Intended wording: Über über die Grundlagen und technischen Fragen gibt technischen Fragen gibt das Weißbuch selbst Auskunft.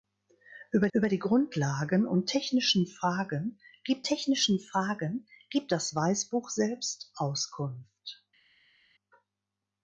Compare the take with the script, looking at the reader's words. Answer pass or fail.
pass